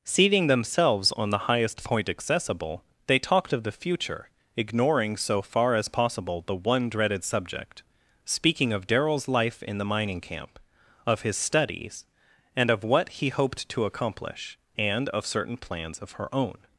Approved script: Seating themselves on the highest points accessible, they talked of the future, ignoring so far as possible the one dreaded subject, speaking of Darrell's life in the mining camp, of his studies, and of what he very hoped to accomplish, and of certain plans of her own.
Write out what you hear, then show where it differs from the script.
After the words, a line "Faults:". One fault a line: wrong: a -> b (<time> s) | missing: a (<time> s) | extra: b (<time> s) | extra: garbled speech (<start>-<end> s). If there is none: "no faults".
Seating themselves on the highest point accessible, they talked of the future, ignoring so far as possible the one dreaded subject, speaking of Darrell's life in the mining camp, of his studies, and of what he hoped to accomplish, and of certain plans of her own.
Faults:
wrong: points -> point (1.8 s)
missing: very (13.3 s)